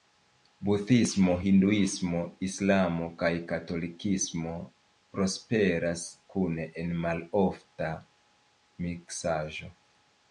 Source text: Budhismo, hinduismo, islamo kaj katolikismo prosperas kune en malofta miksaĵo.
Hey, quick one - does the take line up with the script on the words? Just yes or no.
yes